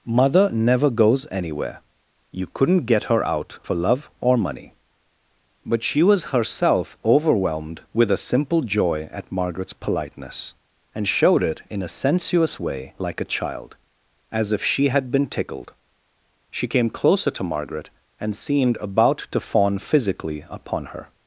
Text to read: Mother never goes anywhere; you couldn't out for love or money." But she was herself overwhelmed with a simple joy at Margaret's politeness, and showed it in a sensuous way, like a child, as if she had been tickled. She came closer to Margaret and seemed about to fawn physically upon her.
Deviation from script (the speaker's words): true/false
true